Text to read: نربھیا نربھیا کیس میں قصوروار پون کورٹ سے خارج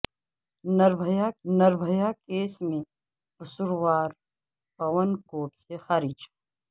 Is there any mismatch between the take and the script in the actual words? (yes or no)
no